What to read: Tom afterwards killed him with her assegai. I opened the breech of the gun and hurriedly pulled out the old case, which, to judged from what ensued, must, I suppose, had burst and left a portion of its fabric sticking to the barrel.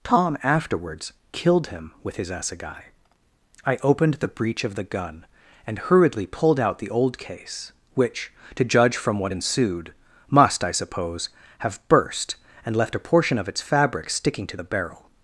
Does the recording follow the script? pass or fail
fail